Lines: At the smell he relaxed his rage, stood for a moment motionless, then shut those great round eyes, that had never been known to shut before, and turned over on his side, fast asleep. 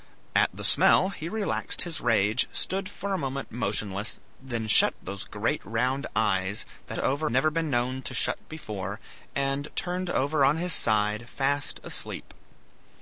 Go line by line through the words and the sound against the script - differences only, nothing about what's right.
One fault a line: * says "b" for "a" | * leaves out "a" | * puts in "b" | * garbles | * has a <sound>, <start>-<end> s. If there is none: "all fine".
* says "over" for "had"